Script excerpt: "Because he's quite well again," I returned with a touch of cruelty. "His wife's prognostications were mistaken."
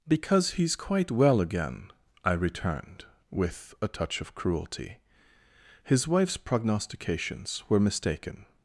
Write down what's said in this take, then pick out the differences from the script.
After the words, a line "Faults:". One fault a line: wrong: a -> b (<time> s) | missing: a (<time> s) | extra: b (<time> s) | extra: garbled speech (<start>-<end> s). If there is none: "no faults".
"Because he's quite well again," I returned with a touch of cruelty. "His wife's prognostications were mistaken."
Faults:
no faults